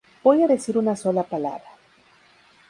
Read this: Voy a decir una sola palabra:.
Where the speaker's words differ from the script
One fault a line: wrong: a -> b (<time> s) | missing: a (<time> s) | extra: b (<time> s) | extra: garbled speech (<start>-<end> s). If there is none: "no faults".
no faults